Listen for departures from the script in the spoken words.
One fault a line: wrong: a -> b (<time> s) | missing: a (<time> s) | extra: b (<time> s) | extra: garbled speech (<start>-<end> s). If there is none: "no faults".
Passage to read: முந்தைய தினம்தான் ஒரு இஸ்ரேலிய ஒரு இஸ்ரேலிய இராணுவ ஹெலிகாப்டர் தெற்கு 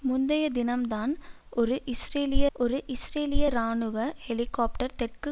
no faults